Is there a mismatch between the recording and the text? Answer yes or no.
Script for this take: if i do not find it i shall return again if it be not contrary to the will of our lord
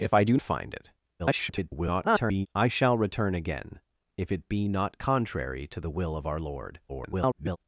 yes